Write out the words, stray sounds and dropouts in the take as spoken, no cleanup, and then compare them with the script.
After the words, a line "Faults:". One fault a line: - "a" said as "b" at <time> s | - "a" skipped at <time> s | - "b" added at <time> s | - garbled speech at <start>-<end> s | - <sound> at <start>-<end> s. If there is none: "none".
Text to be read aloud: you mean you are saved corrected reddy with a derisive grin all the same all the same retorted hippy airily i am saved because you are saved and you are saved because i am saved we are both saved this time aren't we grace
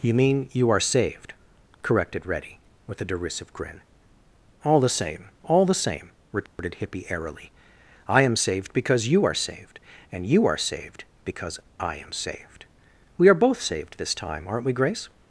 you mean you are saved corrected reddy with a derisive grin all the same all the same retorted hippy airily i am saved because you are saved and you are saved because i am saved we are both saved this time aren't we grace
Faults:
- dropout at 6.5-6.6 s